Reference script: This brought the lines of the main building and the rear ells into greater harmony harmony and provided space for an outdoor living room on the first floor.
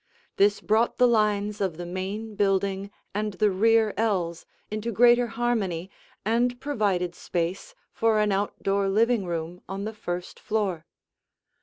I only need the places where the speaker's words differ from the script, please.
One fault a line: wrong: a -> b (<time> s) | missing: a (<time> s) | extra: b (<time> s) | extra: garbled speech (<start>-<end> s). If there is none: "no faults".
missing: harmony (5.9 s)